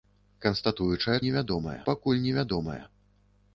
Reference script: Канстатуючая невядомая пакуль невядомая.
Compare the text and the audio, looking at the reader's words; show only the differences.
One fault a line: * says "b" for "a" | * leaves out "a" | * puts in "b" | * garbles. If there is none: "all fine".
all fine